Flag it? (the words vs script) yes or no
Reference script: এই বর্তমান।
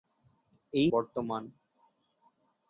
no